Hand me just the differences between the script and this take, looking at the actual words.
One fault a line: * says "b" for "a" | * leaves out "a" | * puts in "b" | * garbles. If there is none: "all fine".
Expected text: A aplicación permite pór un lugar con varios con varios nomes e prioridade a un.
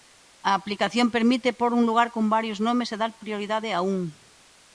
* leaves out "con varios"
* puts in "dar"